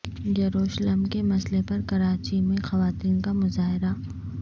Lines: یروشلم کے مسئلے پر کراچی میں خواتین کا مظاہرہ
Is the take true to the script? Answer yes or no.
yes